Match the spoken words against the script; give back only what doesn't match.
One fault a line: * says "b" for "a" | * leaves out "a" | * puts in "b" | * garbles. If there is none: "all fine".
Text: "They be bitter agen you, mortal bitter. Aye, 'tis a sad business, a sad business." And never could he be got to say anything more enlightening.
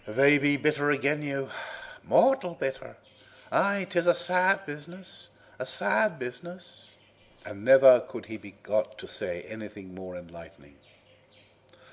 all fine